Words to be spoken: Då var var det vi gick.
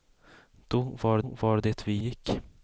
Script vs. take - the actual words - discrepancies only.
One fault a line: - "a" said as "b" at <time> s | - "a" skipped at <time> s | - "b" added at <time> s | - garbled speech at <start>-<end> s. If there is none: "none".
none